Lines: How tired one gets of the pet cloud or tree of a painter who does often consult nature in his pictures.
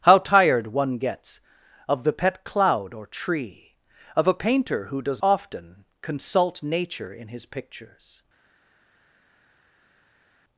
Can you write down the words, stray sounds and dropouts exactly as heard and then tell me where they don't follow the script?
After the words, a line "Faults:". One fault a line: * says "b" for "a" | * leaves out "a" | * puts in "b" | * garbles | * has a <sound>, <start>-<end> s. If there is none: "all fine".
How tired one gets of the pet cloud or tree of a painter who does often consult nature in his pictures.
Faults:
all fine